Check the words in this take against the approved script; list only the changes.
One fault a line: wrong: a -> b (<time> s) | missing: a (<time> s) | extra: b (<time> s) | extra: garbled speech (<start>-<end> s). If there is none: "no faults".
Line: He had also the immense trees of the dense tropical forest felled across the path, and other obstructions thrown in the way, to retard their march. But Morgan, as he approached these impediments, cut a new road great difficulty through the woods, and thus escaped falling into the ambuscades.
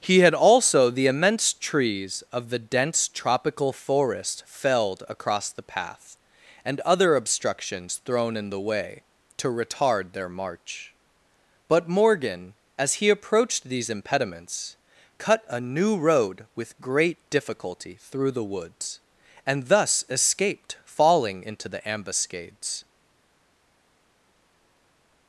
extra: with (16.6 s)